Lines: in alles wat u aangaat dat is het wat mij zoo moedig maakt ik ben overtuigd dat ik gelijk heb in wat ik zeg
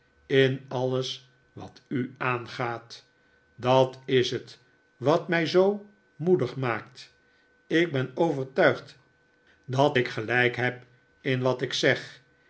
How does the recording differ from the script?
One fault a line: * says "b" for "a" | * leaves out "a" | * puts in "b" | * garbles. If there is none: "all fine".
all fine